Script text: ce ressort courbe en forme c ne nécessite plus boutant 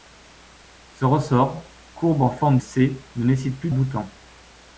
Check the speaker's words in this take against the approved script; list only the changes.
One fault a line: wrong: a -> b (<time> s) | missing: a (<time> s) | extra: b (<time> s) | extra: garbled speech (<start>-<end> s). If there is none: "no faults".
no faults